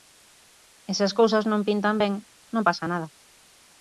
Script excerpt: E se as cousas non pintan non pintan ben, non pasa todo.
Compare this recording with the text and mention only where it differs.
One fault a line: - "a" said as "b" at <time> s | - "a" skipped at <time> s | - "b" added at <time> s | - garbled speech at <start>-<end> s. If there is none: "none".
- "non pintan" skipped at 1.9 s
- "todo" said as "nada" at 2.9 s